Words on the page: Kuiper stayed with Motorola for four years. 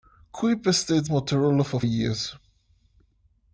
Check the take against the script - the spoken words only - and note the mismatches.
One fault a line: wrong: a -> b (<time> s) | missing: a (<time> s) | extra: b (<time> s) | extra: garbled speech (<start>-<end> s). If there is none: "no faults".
missing: with (1.1 s)
missing: four (1.8 s)